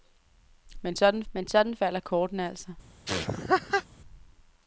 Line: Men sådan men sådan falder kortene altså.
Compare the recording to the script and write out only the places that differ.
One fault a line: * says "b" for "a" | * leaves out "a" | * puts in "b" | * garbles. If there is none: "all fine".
all fine